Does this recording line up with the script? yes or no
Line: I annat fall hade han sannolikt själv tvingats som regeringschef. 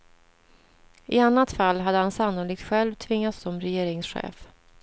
yes